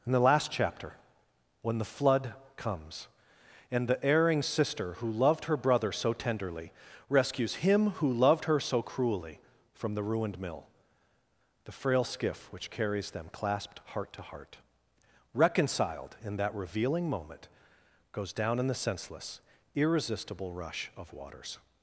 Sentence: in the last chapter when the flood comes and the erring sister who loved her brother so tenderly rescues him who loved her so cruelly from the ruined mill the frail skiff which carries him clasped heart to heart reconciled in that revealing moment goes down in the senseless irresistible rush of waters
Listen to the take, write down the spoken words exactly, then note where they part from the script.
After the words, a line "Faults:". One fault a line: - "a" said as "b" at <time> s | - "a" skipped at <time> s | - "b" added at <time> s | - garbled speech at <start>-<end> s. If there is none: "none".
in the last chapter when the flood comes and the erring sister who loved her brother so tenderly rescues him who loved her so cruelly from the ruined mill the frail skiff which carries them clasped heart to heart reconciled in that revealing moment goes down in the senseless irresistible rush of waters
Faults:
- "him" said as "them" at 13.1 s